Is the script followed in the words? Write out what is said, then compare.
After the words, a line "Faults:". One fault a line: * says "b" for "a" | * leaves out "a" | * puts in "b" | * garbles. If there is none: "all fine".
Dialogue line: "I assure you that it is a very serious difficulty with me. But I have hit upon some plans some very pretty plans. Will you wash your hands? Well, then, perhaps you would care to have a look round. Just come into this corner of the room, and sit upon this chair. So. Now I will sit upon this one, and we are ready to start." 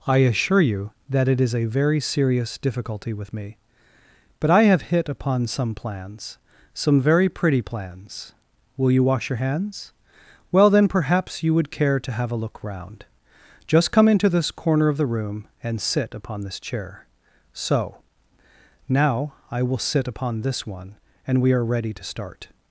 "I assure you that it is a very serious difficulty with me. But I have hit upon some plans some very pretty plans. Will you wash your hands? Well, then, perhaps you would care to have a look round. Just come into this corner of the room, and sit upon this chair. So. Now I will sit upon this one, and we are ready to start."
Faults:
all fine